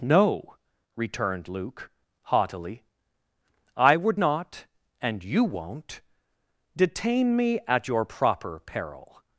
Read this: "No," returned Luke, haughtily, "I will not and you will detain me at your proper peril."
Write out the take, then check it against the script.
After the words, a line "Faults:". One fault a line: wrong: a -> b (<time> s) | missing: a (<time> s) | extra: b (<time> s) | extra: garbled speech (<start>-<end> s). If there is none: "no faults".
"No," returned Luke, haughtily, "I would not and you won't detain me at your proper peril."
Faults:
wrong: will -> would (4.0 s)
wrong: will -> won't (5.4 s)